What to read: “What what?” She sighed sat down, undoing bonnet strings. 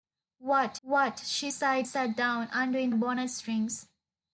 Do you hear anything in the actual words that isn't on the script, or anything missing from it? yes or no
no